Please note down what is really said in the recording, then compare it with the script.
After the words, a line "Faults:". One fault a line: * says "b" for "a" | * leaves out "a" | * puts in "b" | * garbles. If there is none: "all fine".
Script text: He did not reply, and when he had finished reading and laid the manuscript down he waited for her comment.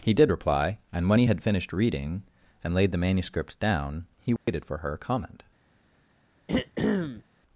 He did reply, and when he had finished reading and laid the manuscript down he waited for her comment.
Faults:
* leaves out "not"